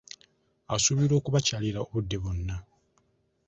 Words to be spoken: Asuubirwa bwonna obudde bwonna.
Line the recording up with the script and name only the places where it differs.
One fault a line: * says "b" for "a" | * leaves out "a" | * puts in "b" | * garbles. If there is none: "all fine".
* says "okubakyalira" for "bwonna"